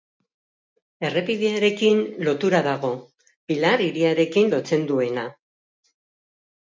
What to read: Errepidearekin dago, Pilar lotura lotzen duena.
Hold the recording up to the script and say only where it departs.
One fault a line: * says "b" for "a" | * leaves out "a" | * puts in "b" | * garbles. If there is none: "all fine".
* puts in "lotura"
* says "hiriarekin" for "lotura"